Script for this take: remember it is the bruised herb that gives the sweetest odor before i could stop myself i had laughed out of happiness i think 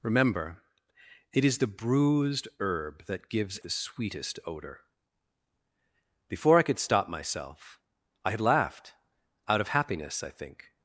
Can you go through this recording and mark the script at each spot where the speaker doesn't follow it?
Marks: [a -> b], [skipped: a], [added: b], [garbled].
remember it is the bruised herb that gives the sweetest odor before i could stop myself i had laughed out of happiness i think